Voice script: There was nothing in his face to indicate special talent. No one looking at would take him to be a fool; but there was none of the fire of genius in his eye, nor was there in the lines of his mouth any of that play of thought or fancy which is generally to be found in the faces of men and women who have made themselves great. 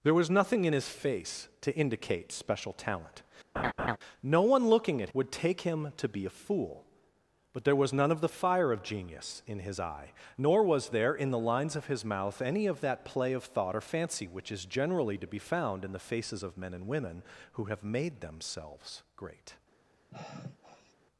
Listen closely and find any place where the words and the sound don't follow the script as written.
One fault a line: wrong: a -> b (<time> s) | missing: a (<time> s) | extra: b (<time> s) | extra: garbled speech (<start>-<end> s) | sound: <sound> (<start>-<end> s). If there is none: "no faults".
sound: laugh (3.6-4.0 s)
sound: sigh (20.1-20.9 s)